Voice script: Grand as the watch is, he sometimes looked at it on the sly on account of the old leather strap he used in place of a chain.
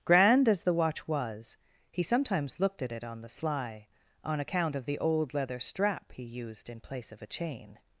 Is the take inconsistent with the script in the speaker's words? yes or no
yes